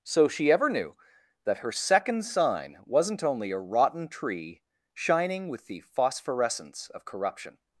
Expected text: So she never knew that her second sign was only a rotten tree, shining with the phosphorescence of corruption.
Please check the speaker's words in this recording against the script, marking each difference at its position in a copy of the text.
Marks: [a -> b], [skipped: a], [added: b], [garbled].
So she [never -> ever] knew that her second sign [was -> wasn't] only a rotten tree, shining with the phosphorescence of corruption.